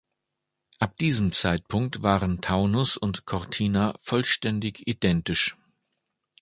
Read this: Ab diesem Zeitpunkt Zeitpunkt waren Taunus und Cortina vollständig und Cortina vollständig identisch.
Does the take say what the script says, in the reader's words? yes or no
no